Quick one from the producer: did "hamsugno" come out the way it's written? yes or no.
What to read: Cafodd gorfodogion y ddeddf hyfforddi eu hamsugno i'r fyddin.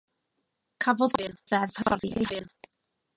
no